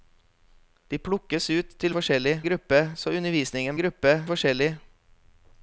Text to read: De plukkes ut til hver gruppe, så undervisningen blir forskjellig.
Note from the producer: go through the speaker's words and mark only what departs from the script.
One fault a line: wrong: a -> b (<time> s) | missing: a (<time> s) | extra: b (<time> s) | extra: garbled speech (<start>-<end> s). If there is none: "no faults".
wrong: hver -> forskjellig (1.9 s)
wrong: blir -> gruppe (3.8 s)